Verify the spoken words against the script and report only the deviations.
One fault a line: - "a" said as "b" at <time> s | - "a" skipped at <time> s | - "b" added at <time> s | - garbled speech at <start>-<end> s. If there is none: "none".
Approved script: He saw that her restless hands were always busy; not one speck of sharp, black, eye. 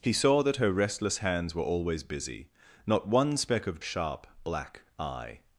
none